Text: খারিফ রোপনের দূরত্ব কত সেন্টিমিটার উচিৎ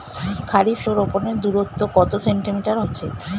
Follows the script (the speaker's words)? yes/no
yes